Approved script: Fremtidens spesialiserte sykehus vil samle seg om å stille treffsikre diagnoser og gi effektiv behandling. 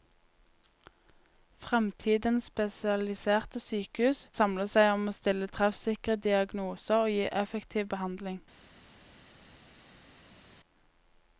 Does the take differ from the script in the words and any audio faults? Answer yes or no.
yes